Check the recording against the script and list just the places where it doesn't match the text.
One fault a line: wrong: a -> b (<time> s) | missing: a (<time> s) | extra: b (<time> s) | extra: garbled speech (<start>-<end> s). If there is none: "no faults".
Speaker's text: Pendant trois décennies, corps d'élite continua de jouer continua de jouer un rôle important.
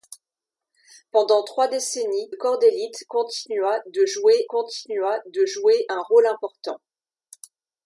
no faults